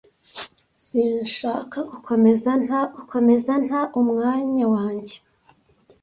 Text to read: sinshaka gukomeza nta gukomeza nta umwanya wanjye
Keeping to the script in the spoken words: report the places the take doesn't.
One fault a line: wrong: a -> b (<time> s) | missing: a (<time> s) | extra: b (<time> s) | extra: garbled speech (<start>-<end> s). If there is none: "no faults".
no faults